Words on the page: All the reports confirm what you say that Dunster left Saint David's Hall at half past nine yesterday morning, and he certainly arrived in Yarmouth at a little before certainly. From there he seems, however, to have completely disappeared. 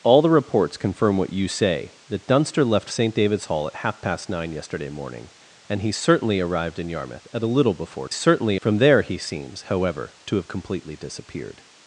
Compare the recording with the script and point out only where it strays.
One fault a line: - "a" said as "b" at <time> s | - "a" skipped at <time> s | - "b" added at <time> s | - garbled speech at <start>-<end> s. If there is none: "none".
none